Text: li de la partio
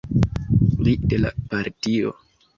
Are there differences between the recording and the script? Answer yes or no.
no